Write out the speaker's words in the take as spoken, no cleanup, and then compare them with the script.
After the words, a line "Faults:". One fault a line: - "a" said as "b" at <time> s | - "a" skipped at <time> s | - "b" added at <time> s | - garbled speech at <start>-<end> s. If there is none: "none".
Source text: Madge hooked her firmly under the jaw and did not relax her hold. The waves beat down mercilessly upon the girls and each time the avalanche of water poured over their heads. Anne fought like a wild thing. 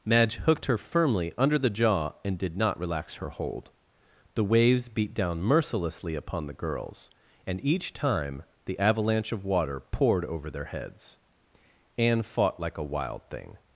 Madge hooked her firmly under the jaw and did not relax her hold. The waves beat down mercilessly upon the girls and each time the avalanche of water poured over their heads. Anne fought like a wild thing.
Faults:
none